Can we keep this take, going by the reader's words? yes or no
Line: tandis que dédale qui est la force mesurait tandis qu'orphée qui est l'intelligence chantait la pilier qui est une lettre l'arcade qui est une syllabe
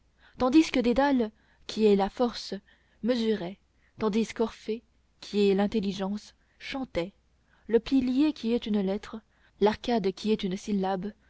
no